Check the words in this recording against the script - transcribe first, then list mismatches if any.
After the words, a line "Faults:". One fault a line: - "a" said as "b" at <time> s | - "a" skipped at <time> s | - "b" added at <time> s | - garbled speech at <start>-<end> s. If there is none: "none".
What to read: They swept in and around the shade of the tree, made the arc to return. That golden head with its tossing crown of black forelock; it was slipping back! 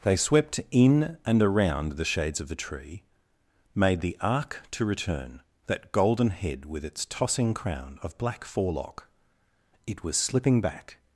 They swept in and around the shades of the tree, made the arc to return. That golden head with its tossing crown of black forelock; it was slipping back!
Faults:
- "shade" said as "shades" at 2.0 s